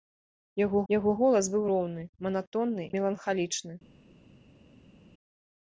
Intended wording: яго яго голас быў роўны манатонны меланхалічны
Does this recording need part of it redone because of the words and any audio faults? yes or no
no